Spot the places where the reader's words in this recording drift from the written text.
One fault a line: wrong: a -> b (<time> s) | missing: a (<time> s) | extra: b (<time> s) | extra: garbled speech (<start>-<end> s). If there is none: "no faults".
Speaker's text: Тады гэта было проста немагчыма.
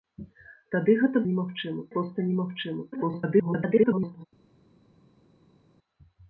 wrong: было -> немагчыма (1.3 s)
extra: garbled speech (2.9-4.3 s)